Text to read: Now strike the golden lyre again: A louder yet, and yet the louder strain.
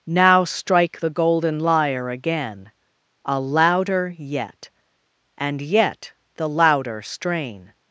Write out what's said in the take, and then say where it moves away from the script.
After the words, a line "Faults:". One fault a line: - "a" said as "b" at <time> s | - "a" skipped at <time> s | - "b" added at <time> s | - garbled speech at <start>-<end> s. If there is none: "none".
Now strike the golden lyre again: A louder yet, and yet the louder strain.
Faults:
none